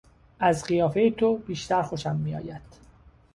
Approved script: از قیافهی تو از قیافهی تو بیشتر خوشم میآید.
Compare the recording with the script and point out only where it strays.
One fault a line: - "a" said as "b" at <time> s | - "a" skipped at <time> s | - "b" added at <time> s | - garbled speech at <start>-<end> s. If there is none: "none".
- "از قیافهی تو" skipped at 1.4 s